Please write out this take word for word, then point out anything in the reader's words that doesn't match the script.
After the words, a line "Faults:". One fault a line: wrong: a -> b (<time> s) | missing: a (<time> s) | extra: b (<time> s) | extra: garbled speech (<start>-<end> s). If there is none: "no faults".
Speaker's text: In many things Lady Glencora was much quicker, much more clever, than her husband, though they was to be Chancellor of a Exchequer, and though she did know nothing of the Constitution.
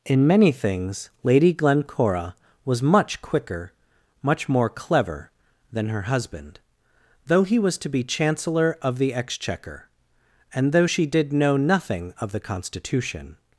In many things Lady Glencora was much quicker, much more clever, than her husband, though he was to be Chancellor of the Exchequer, and though she did know nothing of the Constitution.
Faults:
wrong: they -> he (7.4 s)
wrong: a -> the (9.0 s)